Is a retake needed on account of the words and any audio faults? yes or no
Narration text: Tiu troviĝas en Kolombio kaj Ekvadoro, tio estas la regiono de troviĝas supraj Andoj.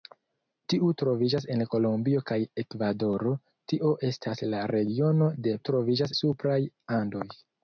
no